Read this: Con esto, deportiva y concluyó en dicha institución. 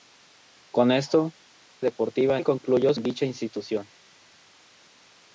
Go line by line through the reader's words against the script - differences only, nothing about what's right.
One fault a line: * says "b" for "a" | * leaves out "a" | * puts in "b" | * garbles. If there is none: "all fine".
all fine